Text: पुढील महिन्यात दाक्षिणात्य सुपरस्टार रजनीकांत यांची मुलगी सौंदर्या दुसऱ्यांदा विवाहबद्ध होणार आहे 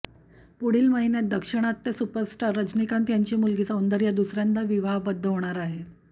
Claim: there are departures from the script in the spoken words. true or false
false